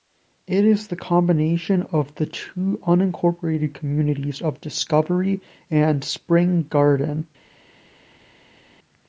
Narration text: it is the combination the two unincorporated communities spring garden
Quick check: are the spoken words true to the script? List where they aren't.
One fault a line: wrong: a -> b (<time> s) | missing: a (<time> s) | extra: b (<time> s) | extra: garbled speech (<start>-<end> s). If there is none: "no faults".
extra: of (1.9 s)
extra: of discovery and (4.4 s)